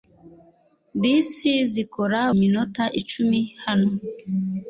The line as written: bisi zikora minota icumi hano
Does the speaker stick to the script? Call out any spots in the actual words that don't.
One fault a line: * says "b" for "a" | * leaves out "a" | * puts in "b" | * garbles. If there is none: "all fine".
all fine